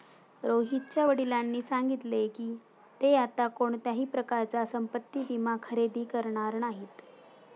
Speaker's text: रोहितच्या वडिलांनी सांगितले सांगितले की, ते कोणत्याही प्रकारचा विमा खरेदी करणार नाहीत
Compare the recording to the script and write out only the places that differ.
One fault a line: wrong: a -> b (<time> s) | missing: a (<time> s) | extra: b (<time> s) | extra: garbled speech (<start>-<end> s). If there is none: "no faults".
missing: सांगितले (2.3 s)
extra: आता (3.1 s)
extra: संपत्ति (4.6 s)